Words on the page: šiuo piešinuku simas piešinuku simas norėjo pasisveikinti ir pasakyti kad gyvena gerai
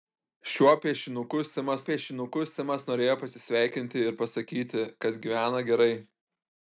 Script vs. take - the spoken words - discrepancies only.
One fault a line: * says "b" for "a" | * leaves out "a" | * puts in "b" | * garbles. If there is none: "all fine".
all fine